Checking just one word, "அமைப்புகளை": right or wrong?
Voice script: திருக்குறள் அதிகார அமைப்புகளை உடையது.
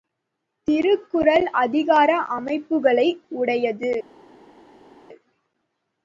right